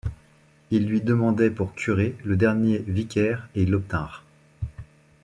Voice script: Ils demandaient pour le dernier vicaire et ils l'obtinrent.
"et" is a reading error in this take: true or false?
false